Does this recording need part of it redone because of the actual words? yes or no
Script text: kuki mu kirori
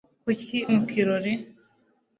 no